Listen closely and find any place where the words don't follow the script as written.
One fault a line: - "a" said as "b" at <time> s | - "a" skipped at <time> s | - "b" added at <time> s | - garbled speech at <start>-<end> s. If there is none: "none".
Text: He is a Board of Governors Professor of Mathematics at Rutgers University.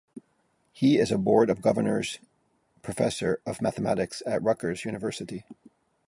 none